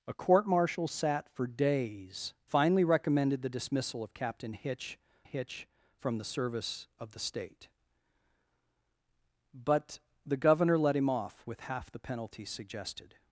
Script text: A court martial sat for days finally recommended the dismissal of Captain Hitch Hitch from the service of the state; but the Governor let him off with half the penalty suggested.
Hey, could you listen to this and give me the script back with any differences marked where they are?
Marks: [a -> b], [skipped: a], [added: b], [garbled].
A court martial sat for days finally recommended the dismissal of Captain Hitch Hitch from the service of the state; but the Governor let him off with half the penalty suggested.